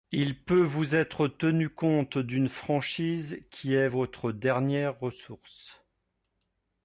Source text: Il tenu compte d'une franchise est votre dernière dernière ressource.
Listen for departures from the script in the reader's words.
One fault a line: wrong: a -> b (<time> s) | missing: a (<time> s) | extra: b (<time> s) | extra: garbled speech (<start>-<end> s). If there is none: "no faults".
extra: peut vous être (0.4 s)
extra: qui (3.5 s)
missing: dernière (5.0 s)